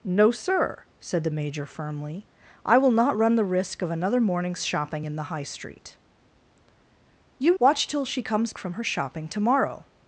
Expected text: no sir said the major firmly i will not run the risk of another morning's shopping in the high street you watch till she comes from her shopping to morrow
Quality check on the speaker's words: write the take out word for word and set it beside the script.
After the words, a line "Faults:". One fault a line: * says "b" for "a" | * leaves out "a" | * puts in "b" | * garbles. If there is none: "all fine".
no sir said the major firmly i will not run the risk of another morning's shopping in the high street you watch till she comes from her shopping to morrow
Faults:
all fine